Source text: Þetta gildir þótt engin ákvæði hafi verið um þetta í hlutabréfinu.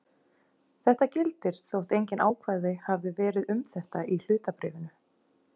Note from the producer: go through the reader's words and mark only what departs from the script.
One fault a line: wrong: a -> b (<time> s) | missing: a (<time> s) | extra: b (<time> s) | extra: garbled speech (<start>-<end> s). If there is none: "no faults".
no faults